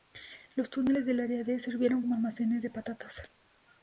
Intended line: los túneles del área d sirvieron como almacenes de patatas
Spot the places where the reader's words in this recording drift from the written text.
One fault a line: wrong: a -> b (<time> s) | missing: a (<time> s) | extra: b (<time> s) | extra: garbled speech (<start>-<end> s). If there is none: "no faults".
no faults